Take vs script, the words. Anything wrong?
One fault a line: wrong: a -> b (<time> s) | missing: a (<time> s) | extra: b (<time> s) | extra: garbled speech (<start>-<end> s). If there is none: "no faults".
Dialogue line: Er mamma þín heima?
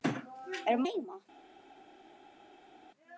missing: mamma þín (0.8 s)